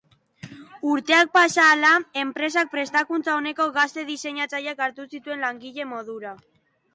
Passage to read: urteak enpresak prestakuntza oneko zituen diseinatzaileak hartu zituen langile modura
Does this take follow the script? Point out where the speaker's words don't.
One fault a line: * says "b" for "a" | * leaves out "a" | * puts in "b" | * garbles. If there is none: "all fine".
* puts in "pasa ahala"
* says "gazte" for "zituen"